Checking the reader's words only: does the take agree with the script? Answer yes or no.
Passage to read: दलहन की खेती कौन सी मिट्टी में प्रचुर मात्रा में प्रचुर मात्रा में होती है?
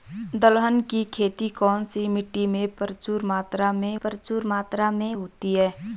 yes